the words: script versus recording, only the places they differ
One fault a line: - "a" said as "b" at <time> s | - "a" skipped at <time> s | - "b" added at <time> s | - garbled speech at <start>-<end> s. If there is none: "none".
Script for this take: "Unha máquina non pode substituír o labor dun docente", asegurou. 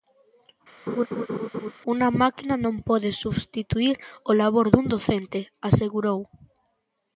none